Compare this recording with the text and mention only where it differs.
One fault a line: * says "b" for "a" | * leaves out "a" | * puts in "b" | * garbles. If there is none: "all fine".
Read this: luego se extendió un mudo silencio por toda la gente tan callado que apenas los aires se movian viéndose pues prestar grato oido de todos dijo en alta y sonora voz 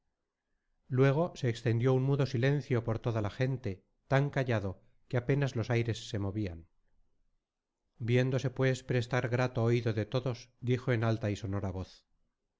all fine